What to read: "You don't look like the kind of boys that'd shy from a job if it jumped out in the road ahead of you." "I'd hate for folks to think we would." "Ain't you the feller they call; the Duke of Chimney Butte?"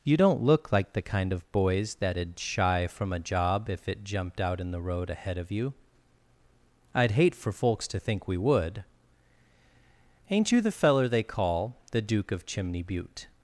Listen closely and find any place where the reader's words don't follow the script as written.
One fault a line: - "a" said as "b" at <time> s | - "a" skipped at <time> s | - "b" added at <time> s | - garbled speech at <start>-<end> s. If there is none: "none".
none